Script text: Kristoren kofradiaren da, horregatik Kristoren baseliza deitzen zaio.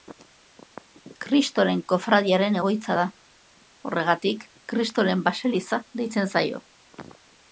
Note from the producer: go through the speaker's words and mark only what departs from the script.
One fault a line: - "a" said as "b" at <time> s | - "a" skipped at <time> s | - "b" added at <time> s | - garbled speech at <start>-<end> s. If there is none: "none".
- "egoitza" added at 2.6 s